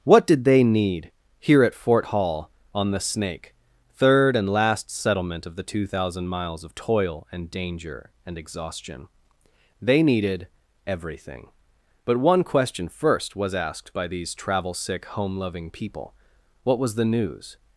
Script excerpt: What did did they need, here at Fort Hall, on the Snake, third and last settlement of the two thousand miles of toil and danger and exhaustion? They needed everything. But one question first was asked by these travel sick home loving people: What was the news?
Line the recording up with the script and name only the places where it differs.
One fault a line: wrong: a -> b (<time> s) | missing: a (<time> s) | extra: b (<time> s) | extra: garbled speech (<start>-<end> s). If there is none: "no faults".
missing: did (0.5 s)